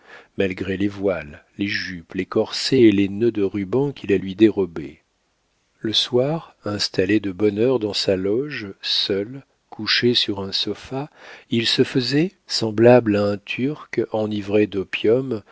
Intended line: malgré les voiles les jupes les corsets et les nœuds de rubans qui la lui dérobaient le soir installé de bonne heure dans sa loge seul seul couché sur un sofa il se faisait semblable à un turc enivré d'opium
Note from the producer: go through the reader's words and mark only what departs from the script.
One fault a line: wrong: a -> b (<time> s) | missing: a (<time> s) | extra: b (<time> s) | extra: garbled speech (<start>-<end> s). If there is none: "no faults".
missing: seul (9.4 s)